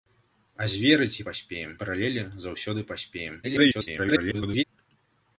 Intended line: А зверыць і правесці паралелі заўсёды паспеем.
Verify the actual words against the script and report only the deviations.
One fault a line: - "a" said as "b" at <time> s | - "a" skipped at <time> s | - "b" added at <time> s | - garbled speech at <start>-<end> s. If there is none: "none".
- "правесці" said as "паспеем" at 1.3 s
- garbled speech at 3.4-4.6 s